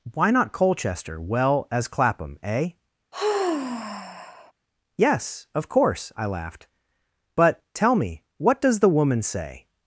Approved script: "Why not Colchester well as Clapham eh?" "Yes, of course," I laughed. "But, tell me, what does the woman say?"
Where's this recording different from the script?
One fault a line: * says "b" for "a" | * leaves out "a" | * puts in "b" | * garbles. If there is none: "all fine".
all fine